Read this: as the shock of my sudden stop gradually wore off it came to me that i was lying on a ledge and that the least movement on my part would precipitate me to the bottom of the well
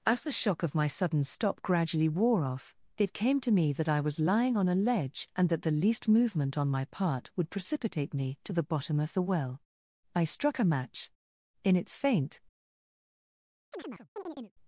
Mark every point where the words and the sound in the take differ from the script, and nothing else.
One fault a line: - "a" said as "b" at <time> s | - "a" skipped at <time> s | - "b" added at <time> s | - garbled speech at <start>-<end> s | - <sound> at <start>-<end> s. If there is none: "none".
- "i struck a match in its faint" added at 10.2 s
- chirp at 13.7-14.5 s